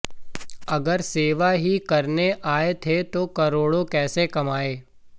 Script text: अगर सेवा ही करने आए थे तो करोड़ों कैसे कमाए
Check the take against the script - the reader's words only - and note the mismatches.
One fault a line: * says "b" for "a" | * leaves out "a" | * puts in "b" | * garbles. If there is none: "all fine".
all fine